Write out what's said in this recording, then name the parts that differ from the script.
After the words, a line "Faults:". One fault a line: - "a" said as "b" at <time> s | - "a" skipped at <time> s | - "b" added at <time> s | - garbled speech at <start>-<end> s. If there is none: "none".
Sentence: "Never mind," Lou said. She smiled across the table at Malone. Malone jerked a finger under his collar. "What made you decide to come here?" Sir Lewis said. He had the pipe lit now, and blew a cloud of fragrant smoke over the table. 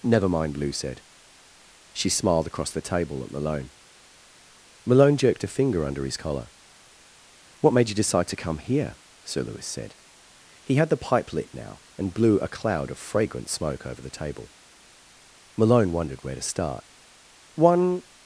"Never mind," Lou said. She smiled across the table at Malone. Malone jerked a finger under his collar. "What made you decide to come here?" Sir Lewis said. He had the pipe lit now, and blew a cloud of fragrant smoke over the table. Malone wondered where to start. "One
Faults:
- "Malone wondered where to start One" added at 15.6 s